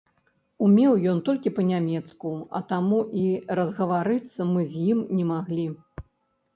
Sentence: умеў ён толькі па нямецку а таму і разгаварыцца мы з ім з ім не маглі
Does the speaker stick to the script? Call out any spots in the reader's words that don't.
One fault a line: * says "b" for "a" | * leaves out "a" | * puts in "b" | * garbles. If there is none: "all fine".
* leaves out "з ім"